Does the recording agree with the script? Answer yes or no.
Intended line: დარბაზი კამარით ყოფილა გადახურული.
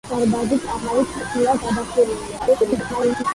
no